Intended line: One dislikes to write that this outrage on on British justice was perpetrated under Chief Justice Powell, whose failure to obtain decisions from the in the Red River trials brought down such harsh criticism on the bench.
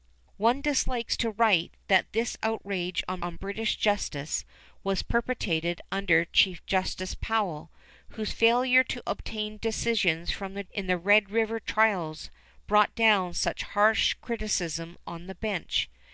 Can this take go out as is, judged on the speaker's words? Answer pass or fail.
pass